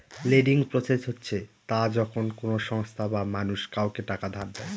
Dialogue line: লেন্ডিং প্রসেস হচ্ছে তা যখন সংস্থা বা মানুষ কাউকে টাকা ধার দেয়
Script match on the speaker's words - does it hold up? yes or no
no